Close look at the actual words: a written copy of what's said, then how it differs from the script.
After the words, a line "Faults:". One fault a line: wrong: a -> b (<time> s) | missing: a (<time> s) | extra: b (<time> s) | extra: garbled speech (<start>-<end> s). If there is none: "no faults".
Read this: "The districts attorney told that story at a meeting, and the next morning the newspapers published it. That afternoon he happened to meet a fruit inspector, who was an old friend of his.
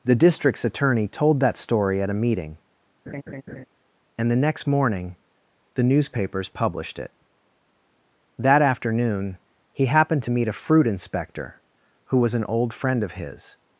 "The districts attorney told that story at a meeting, and the next morning the newspapers published it. That afternoon he happened to meet a fruit inspector, who was an old friend of his.
Faults:
no faults